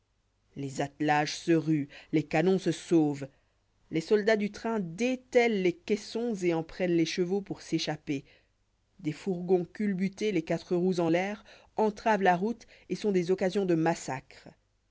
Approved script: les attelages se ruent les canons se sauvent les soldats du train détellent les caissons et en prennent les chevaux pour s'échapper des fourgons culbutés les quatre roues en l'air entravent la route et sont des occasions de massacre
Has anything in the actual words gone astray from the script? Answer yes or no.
no